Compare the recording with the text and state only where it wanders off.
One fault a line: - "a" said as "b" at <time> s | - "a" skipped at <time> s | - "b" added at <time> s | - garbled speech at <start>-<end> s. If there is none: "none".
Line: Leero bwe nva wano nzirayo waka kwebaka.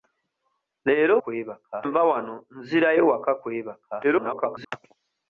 - "bwe" said as "kwebaka" at 1.2 s
- garbled speech at 4.0-4.7 s